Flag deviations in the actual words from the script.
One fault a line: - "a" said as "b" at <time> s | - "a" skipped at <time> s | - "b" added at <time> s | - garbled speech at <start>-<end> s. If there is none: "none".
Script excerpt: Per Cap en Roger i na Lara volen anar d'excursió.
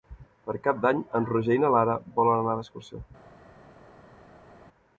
- "d'Any" added at 0.8 s